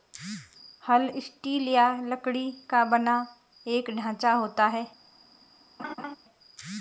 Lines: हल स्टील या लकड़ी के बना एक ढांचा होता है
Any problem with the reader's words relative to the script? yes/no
yes